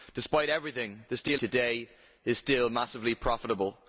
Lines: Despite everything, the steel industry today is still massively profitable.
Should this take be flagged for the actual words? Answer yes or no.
yes